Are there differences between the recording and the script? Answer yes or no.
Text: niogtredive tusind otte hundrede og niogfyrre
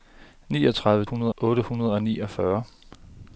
yes